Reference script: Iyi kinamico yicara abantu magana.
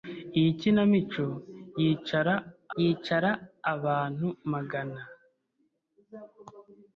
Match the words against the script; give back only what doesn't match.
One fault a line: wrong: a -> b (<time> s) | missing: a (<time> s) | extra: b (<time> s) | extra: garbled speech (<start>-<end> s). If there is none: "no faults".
extra: yicara (2.8 s)